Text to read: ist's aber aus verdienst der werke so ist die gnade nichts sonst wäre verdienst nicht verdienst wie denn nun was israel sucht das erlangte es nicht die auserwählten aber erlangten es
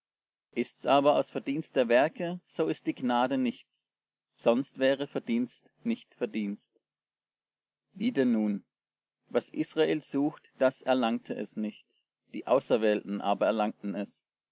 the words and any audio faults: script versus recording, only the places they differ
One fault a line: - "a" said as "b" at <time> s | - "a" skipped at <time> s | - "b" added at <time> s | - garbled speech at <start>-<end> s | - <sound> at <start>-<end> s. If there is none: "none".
none